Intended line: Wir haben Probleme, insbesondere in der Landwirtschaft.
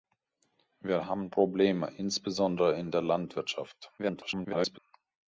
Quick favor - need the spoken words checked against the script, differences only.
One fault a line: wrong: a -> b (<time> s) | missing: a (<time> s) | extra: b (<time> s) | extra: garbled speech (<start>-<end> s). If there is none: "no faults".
extra: garbled speech (4.0-4.8 s)